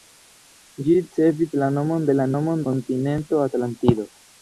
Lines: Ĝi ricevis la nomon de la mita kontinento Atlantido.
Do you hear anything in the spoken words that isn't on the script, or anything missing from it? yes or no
yes